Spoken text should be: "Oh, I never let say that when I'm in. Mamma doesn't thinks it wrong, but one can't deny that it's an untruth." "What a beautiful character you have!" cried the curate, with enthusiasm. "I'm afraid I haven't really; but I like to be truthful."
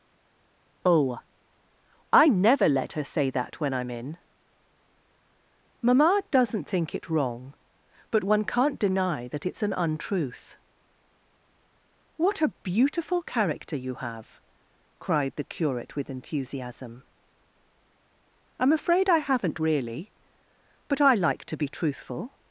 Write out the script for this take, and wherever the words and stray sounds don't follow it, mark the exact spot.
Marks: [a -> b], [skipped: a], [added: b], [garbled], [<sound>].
"Oh, I never let [added: her] say that when I'm in. Mamma doesn't [thinks -> think] it wrong, but one can't deny that it's an untruth." "What a beautiful character you have!" cried the curate, with enthusiasm. "I'm afraid I haven't really; but I like to be truthful."